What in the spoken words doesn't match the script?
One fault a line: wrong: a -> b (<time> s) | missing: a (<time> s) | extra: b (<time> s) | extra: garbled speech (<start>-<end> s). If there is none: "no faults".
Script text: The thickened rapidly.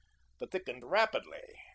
no faults